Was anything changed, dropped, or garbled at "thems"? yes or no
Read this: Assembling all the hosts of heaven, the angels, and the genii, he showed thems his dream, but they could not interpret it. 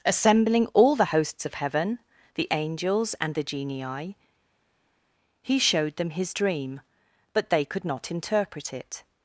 yes